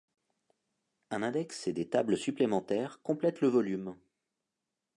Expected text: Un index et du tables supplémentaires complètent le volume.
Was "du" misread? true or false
true